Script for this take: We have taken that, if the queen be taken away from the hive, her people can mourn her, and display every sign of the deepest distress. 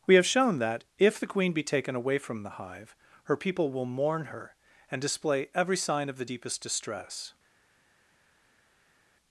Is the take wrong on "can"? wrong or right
wrong